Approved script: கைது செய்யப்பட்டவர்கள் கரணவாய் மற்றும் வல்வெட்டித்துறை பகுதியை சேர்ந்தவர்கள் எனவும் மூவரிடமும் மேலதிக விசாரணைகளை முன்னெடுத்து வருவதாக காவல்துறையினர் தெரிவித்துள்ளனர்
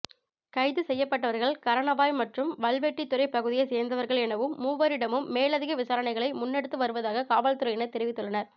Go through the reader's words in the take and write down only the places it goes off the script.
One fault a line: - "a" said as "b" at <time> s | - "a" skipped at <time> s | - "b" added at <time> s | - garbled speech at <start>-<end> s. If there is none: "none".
none